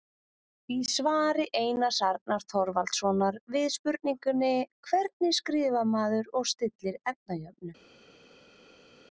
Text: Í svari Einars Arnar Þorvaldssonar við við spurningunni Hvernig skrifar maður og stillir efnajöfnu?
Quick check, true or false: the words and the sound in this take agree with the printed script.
false